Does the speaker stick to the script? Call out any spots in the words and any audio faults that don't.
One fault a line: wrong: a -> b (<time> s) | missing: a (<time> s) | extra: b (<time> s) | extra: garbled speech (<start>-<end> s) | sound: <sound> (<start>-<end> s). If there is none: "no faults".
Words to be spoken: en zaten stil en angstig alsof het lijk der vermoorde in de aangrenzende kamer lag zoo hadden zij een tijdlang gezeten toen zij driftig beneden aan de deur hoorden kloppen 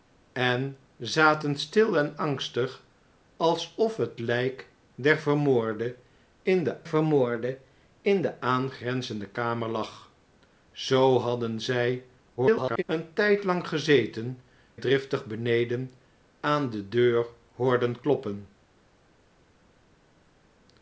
extra: vermoorde in de (6.8 s)
extra: garbled speech (12.4-12.8 s)
missing: toen zij (14.4 s)